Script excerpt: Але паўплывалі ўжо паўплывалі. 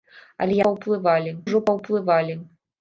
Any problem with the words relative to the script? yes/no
no